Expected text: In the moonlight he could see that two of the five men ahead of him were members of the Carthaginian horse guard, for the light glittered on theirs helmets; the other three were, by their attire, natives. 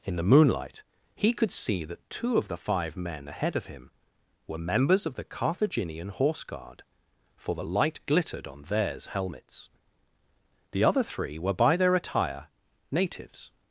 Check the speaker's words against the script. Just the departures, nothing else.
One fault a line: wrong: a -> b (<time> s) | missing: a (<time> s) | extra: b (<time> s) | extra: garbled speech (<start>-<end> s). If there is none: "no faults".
no faults